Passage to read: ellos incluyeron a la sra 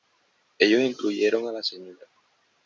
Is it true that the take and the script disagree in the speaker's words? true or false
false